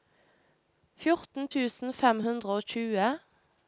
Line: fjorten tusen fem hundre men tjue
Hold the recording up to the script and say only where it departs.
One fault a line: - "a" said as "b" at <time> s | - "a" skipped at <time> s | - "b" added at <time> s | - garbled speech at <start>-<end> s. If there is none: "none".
- "men" said as "og" at 2.6 s